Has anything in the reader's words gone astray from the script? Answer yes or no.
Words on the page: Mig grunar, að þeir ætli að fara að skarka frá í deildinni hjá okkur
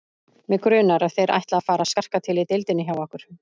yes